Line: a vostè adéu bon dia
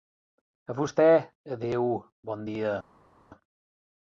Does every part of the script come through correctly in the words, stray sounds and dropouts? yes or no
yes